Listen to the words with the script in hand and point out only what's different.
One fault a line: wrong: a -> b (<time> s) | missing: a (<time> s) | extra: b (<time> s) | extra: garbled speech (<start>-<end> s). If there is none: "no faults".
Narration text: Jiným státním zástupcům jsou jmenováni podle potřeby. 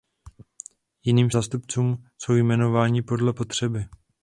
missing: státním (1.3 s)